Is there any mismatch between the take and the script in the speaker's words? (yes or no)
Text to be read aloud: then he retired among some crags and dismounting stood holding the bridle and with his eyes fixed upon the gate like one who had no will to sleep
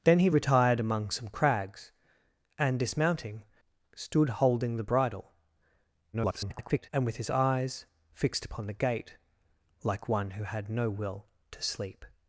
yes